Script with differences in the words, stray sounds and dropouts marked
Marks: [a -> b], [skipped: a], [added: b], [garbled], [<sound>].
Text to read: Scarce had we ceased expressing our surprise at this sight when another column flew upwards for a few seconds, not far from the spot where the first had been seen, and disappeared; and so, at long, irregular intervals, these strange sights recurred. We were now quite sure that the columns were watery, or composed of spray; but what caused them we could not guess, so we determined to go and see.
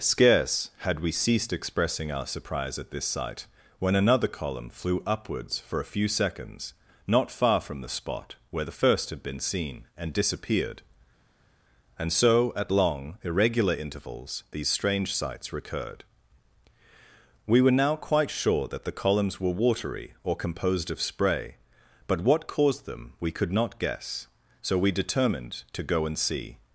Scarce had we ceased expressing our surprise at this sight when another column flew upwards for a few seconds, not far from the spot where the first had been seen, and disappeared; and so, at long, irregular intervals, these strange sights recurred. We were now quite sure that the columns were watery, or composed of spray; but what caused them we could not guess, so we determined to go and see.